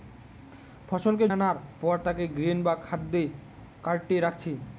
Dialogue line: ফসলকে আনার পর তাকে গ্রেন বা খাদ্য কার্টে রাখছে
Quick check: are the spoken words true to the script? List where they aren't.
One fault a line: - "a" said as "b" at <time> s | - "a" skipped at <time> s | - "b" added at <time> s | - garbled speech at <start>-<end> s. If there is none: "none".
none